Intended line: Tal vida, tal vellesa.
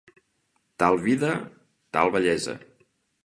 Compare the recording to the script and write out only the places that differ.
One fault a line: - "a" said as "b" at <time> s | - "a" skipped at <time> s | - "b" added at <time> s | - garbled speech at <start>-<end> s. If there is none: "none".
none